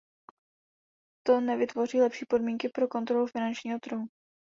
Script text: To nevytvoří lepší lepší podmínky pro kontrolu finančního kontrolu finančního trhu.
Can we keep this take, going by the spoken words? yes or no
no